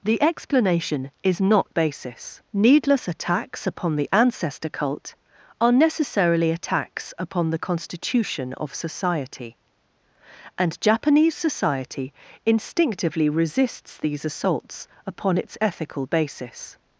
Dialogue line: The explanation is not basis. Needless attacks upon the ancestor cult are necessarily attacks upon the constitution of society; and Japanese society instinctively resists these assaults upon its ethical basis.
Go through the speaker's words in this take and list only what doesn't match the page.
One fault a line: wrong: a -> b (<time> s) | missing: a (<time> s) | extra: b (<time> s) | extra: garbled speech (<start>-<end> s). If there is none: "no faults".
no faults